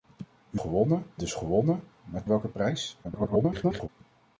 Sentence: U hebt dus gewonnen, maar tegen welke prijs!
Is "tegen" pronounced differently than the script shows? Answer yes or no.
yes